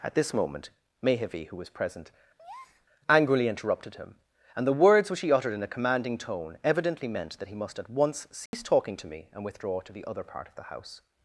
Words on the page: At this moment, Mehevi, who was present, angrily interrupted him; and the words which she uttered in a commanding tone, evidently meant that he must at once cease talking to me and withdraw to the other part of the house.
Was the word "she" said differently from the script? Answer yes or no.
yes